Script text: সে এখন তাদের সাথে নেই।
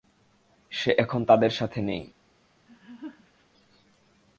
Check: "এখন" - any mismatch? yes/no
no